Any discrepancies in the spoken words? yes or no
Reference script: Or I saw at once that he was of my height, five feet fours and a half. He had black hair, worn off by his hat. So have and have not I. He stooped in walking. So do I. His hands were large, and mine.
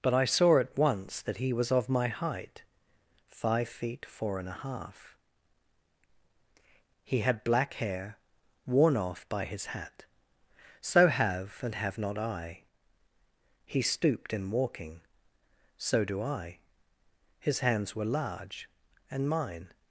yes